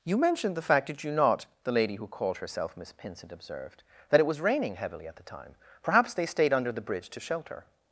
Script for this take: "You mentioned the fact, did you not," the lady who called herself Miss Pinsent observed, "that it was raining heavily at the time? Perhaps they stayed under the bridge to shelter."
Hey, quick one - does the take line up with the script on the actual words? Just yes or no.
yes